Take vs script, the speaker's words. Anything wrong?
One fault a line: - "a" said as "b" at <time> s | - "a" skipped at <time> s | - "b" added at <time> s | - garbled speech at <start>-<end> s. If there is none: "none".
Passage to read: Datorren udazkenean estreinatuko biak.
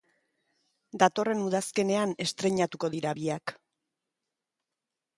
- "dira" added at 3.0 s